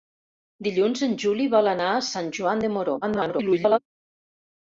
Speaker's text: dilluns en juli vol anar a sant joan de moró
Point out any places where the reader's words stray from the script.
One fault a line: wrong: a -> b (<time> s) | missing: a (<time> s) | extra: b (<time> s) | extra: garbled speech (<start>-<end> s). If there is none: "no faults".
extra: garbled speech (3.0-3.8 s)